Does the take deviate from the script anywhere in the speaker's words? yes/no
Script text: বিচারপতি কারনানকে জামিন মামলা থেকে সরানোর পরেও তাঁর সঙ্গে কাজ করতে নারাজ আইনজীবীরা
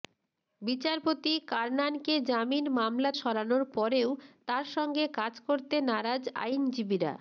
yes